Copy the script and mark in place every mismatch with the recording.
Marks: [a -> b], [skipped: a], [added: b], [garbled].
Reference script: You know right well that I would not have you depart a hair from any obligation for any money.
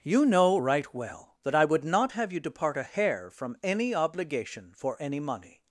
You know right well that I would not have you depart a hair from any obligation for any money.